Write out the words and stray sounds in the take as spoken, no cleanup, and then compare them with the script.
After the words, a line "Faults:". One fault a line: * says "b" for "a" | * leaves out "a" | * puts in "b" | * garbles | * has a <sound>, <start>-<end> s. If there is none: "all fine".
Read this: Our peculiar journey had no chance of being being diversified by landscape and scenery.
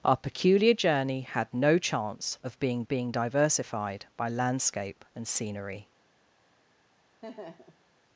Our peculiar journey had no chance of being being diversified by landscape and scenery.
Faults:
* has a laugh, 7.2-7.8 s